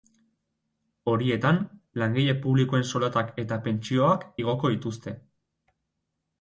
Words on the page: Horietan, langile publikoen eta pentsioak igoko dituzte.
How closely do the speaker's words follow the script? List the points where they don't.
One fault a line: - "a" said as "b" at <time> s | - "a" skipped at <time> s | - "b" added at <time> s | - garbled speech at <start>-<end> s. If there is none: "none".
- "soldatak" added at 2.9 s